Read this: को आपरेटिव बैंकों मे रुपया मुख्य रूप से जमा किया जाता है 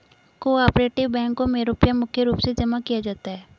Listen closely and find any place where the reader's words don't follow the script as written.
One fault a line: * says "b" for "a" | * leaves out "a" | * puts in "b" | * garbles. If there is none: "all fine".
all fine